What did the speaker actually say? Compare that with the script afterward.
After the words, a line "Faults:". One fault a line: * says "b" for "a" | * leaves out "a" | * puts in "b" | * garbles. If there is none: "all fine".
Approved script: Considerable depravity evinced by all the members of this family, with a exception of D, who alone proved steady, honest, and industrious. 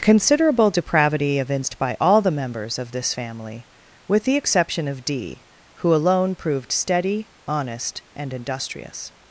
Considerable depravity evinced by all the members of this family, with the exception of D, who alone proved steady, honest, and industrious.
Faults:
* says "the" for "a"